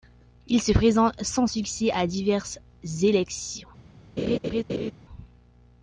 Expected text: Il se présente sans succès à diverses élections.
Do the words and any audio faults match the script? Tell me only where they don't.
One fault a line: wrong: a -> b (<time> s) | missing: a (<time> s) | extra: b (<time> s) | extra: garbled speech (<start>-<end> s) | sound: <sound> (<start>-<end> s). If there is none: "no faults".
sound: laugh (4.2-4.9 s)